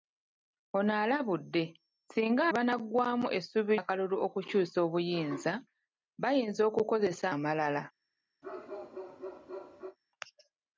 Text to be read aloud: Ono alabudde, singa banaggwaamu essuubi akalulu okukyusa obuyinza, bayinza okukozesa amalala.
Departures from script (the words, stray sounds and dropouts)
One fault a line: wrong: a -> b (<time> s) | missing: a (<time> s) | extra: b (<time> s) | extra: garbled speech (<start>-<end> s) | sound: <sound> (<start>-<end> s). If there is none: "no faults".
sound: bark (8.4-10.0 s)